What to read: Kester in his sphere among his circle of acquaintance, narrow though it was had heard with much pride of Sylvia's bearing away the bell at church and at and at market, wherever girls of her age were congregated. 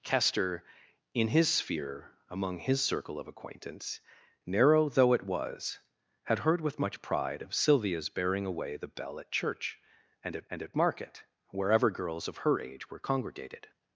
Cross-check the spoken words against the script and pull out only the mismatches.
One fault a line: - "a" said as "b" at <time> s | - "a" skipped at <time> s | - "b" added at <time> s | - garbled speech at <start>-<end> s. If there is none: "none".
none